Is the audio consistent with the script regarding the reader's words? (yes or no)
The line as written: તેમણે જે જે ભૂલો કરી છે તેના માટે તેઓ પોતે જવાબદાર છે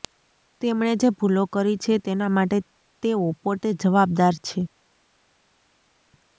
no